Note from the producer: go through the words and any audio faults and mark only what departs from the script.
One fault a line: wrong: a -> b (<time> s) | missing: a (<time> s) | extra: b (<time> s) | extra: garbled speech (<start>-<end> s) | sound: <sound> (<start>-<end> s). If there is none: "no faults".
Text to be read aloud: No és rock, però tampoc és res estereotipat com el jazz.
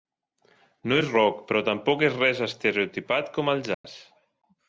sound: dropout (3.7-3.8 s)